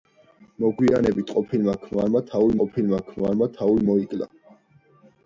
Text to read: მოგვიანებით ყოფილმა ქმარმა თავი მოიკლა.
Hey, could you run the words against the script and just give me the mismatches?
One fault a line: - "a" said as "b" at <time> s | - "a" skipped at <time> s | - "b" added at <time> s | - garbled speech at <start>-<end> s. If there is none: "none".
- "ყოფილმა ქმარმა თავი" added at 2.6 s